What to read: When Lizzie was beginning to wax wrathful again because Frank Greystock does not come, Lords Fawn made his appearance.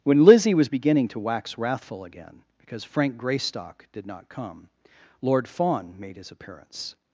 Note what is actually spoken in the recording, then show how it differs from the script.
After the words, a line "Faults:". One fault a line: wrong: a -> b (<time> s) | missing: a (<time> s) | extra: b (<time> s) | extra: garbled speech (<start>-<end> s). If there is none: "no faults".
When Lizzie was beginning to wax wrathful again because Frank Greystock did not come, Lord Fawn made his appearance.
Faults:
wrong: does -> did (3.9 s)
wrong: Lords -> Lord (5.2 s)